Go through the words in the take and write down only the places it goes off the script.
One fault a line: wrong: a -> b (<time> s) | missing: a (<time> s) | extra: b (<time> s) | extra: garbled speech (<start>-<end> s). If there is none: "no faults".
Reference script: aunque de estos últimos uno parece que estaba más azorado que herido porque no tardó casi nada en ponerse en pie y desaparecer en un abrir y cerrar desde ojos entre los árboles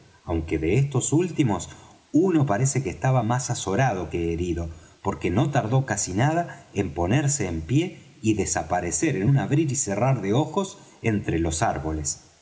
wrong: desde -> de (10.2 s)